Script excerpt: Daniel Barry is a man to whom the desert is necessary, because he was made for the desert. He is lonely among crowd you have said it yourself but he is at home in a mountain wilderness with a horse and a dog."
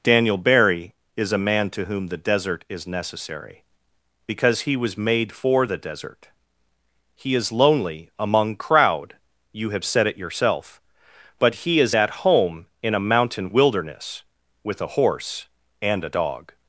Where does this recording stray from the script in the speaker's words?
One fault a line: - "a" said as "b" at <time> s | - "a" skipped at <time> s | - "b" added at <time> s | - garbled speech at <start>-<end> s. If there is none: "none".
none